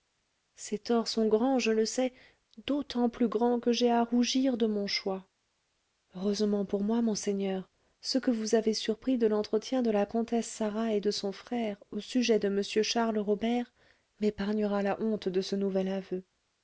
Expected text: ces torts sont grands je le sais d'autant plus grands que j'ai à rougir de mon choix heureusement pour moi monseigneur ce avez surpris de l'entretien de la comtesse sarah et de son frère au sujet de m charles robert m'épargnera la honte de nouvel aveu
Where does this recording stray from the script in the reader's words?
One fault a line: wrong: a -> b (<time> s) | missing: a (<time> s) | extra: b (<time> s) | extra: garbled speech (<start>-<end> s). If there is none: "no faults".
extra: que vous (8.2 s)
extra: ce (15.4 s)